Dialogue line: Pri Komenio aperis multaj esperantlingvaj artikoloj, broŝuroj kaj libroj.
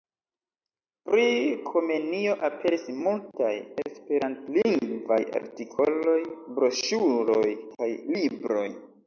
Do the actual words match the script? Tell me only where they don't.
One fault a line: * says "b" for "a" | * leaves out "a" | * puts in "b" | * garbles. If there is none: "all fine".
all fine